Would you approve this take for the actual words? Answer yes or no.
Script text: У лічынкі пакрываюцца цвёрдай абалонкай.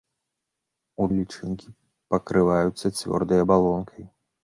yes